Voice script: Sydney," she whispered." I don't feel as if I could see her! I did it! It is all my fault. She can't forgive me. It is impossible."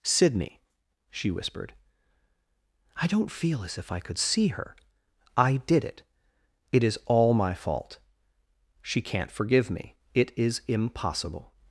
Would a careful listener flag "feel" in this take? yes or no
no